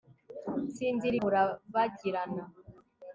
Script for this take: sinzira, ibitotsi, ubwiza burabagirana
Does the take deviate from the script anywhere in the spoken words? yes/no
yes